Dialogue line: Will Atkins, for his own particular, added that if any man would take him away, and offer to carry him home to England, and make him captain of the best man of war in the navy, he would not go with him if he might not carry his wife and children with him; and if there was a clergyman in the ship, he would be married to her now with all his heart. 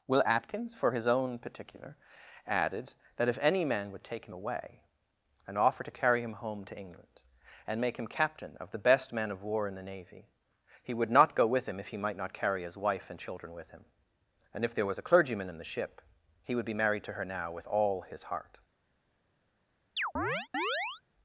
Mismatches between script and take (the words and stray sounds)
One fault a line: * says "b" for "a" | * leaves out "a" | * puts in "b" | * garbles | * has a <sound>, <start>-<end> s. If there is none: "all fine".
* has a chirp, 20.0-21.0 s